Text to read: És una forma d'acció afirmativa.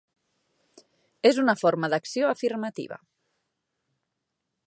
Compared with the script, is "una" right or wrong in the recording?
right